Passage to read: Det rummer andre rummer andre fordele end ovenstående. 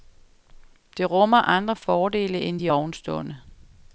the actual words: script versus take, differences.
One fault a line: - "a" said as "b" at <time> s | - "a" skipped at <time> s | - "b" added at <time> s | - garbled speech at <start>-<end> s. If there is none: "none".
- "rummer andre" skipped at 1.8 s
- "de" added at 2.6 s